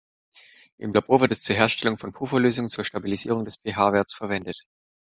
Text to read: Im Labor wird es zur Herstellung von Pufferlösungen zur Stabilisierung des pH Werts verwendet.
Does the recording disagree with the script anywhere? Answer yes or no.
no